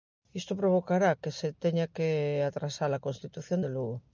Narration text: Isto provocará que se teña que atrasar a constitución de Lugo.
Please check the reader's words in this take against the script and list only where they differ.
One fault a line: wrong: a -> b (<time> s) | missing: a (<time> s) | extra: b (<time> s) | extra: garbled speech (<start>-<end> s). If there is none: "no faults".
no faults